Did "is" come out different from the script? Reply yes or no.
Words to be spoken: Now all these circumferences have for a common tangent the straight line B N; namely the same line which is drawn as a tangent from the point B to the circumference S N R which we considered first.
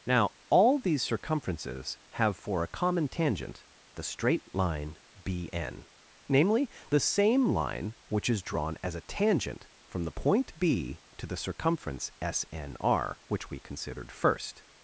no